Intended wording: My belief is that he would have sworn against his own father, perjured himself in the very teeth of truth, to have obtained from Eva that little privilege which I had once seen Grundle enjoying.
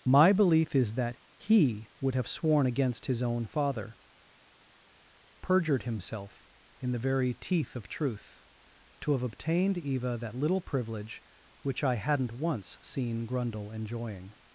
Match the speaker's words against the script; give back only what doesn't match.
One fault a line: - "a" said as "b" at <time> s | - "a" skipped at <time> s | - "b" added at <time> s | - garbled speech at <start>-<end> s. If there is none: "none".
- "from" skipped at 9.8 s
- "had" said as "hadn't" at 12.0 s